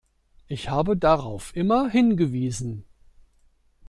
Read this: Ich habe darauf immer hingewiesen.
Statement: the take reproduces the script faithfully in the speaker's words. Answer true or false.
true